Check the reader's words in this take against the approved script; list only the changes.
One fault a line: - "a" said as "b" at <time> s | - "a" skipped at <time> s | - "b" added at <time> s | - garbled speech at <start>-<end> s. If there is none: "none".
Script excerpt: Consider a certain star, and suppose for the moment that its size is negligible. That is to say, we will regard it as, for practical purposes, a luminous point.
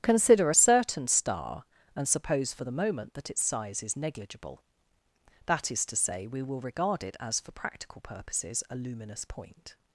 none